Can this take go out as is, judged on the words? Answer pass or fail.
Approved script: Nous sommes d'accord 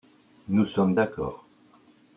pass